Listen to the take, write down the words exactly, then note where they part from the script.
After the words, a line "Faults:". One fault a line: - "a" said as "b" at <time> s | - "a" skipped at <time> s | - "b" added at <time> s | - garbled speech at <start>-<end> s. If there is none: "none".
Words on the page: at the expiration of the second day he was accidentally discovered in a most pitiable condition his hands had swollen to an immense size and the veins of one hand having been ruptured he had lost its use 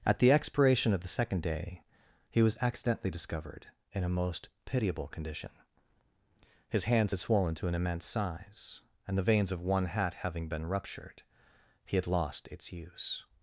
at the expiration of the second day he was accidentally discovered in a most pitiable condition his hands had swollen to an immense size and the veins of one hat having been ruptured he had lost its use
Faults:
- "hand" said as "hat" at 9.8 s